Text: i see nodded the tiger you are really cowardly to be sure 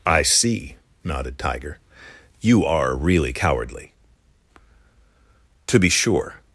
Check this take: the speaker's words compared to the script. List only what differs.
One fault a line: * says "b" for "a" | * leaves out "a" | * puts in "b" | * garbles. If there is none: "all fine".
* leaves out "the"